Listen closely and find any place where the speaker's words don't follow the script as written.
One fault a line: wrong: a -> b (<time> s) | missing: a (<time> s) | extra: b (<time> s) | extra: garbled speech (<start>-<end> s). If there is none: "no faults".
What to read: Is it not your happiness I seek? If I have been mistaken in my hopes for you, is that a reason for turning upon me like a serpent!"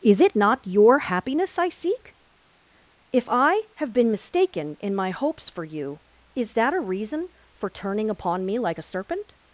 no faults